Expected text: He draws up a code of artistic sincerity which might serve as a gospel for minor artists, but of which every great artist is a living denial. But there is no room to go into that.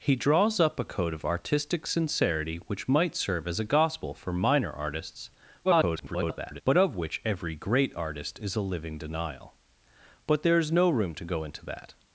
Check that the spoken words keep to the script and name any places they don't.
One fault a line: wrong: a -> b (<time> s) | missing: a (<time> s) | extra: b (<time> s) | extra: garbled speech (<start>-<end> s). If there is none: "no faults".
extra: garbled speech (5.6-6.6 s)